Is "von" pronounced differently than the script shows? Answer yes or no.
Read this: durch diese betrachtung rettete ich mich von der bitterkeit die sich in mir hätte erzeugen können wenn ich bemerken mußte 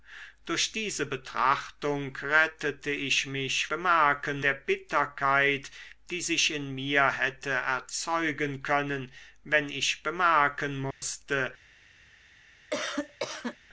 yes